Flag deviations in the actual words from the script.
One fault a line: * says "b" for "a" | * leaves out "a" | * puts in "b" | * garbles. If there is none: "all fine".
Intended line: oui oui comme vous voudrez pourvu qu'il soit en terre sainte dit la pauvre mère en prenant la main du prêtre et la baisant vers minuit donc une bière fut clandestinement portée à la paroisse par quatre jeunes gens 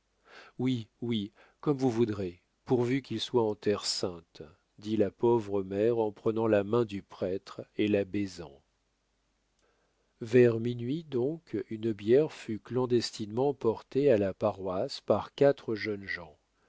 all fine